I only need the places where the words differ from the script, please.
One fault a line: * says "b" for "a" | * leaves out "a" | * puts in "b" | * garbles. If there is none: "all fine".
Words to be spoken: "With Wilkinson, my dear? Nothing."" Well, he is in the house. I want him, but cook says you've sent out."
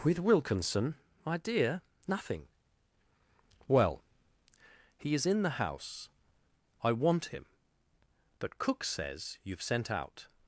all fine